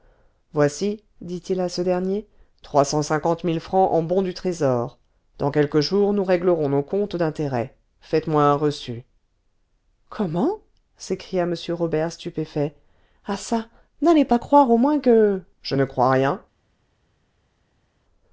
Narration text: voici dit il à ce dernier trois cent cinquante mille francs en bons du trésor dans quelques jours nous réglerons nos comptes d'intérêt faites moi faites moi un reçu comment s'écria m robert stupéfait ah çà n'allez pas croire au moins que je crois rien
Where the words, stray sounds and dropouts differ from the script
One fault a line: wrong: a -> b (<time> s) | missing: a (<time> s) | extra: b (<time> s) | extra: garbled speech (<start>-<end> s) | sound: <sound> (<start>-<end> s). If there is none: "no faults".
missing: faites moi (8.4 s)
extra: ne (15.7 s)